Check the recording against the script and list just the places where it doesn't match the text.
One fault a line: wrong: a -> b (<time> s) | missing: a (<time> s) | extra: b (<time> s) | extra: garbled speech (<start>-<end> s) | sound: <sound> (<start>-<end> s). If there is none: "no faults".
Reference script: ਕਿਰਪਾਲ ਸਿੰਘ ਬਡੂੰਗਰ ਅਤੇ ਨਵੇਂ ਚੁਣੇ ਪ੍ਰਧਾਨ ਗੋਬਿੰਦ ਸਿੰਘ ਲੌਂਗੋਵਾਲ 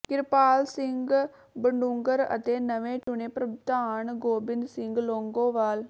sound: dropout (3.0-3.1 s)